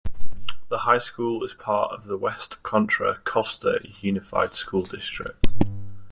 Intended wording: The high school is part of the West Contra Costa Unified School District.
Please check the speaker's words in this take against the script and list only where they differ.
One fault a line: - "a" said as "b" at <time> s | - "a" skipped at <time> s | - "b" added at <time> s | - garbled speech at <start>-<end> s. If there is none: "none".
none